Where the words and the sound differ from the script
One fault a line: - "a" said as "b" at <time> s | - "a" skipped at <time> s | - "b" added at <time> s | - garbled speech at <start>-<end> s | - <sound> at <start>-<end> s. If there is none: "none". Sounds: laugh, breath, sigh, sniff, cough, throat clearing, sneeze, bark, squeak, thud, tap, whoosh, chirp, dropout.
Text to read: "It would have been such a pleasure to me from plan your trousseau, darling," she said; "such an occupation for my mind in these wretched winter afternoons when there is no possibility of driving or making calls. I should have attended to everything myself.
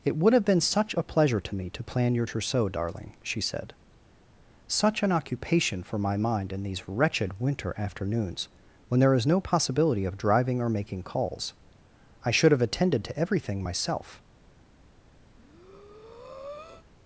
- "from" said as "to" at 1.7 s
- breath at 15.3-16.9 s